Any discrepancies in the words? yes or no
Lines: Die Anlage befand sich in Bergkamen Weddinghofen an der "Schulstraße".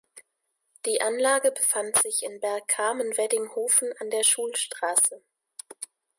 no